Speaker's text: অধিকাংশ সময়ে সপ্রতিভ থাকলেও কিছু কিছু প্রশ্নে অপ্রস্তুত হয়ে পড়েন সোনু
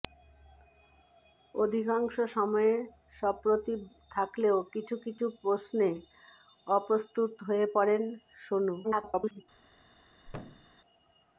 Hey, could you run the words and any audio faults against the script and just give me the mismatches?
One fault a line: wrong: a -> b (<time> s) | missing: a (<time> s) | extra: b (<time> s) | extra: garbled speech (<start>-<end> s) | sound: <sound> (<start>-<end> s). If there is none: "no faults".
extra: garbled speech (8.8-9.4 s)
sound: thud (10.3-10.8 s)